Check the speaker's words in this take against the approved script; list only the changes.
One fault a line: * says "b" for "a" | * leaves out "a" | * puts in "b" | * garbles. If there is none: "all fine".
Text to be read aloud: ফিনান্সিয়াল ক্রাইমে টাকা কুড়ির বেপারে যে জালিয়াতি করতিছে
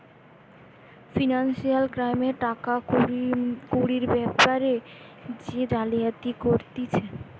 all fine